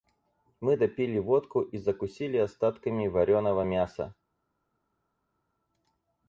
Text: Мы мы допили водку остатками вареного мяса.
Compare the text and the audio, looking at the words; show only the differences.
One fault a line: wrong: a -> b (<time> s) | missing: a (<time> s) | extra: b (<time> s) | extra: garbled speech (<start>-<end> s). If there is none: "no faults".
missing: мы (0.8 s)
extra: и закусили (1.6 s)